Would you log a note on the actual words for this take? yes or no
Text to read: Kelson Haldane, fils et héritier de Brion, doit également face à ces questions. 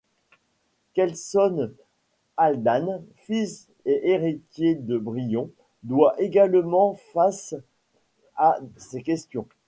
no